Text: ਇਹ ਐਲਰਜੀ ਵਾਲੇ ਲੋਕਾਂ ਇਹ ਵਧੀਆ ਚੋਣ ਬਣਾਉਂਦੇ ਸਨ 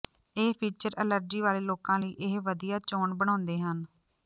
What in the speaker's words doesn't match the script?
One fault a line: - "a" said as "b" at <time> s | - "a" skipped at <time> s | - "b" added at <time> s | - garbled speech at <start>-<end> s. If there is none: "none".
- "ਫੀਚਰ" added at 0.6 s
- "ਲਈ" added at 2.0 s
- "ਸਨ" said as "ਹਨ" at 3.6 s